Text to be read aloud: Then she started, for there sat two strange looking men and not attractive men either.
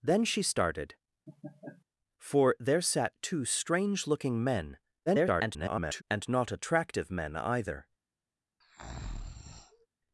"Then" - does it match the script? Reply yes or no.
yes